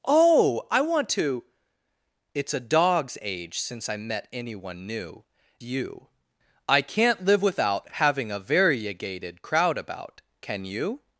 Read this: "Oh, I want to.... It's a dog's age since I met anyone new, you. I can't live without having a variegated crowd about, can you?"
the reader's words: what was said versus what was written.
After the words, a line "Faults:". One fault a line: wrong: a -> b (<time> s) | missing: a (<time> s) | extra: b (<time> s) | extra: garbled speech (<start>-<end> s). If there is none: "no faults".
"Oh, I want to.... It's a dog's age since I met anyone new, you. I can't live without having a variegated crowd about, can you?"
Faults:
no faults